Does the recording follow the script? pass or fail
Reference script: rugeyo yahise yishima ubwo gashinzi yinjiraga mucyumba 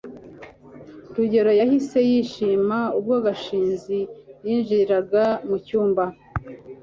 pass